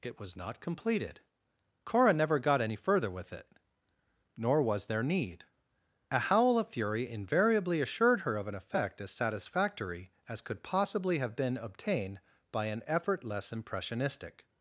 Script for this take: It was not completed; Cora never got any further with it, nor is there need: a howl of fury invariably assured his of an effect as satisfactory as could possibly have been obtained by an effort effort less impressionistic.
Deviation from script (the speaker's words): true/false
true